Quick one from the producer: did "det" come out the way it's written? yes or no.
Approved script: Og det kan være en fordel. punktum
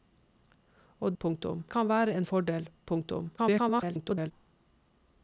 no